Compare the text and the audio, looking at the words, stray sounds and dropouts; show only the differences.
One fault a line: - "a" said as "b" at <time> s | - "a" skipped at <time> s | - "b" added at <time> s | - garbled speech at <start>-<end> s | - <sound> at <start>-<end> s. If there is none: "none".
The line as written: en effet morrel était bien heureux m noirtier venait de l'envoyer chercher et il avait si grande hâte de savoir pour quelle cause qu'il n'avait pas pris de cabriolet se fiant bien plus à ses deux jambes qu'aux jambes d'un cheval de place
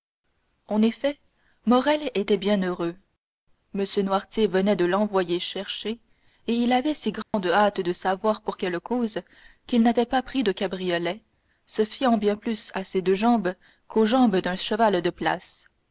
- dropout at 7.2-7.3 s